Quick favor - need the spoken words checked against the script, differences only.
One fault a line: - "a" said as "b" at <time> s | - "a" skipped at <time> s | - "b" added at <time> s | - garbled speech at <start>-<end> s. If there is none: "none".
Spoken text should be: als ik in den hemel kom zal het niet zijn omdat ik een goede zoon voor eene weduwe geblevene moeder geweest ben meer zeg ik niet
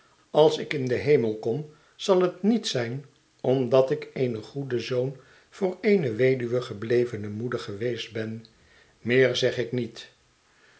none